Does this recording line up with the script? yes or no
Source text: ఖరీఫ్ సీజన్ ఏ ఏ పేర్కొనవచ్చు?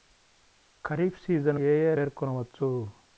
yes